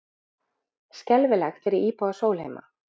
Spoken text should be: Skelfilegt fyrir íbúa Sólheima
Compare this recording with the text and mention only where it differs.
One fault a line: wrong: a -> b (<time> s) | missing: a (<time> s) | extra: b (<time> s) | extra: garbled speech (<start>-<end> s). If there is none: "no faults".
no faults